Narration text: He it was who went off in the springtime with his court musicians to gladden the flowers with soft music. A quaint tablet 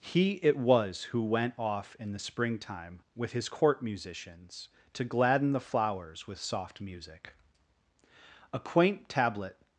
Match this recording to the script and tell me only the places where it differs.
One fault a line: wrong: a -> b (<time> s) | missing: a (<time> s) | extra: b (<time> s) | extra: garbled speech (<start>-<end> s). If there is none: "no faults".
no faults